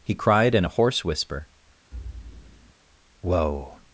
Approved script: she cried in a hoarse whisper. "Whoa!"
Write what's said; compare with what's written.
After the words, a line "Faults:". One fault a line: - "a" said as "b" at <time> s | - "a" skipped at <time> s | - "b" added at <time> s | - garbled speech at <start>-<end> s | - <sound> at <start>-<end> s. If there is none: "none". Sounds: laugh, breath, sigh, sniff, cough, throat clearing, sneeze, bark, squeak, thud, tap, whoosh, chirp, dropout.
he cried in a hoarse whisper. "Whoa!"
Faults:
- "she" said as "he" at 0.0 s
- thud at 1.9-2.7 s